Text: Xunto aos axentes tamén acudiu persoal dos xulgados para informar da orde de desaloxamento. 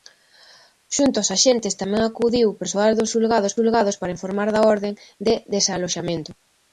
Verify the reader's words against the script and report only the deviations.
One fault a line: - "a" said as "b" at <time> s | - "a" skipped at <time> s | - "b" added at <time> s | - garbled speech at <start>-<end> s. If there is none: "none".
- "xulgados" added at 3.6 s